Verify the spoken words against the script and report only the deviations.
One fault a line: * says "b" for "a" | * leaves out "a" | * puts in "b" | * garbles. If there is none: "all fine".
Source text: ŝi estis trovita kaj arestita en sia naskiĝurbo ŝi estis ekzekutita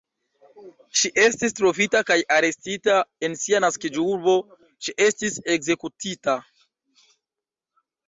all fine